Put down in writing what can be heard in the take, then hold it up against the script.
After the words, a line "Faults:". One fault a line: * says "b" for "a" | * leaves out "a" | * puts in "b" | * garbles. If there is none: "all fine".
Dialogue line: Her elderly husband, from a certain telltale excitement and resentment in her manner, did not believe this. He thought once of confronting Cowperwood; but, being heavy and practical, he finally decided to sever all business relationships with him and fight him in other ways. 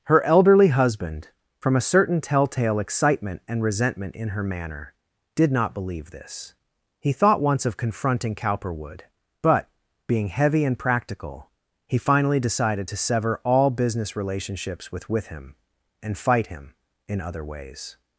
Her elderly husband, from a certain telltale excitement and resentment in her manner, did not believe this. He thought once of confronting Cowperwood; but, being heavy and practical, he finally decided to sever all business relationships with with him and fight him in other ways.
Faults:
* puts in "with"